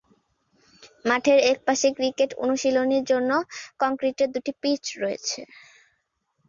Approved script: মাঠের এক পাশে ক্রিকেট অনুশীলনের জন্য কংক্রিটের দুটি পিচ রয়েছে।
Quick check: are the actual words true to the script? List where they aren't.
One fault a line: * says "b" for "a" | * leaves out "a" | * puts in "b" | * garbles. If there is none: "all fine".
all fine